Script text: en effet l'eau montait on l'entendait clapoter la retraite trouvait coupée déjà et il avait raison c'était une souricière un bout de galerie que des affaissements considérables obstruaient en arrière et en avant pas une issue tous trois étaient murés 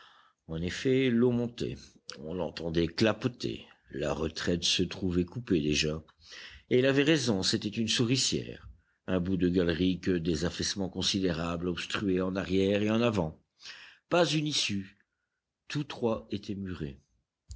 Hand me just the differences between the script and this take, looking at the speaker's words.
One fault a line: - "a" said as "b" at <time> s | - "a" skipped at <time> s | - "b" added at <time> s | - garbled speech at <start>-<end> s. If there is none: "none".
- "se" added at 4.6 s